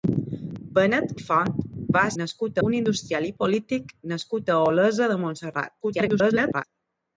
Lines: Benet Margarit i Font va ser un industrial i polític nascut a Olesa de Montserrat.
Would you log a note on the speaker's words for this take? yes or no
yes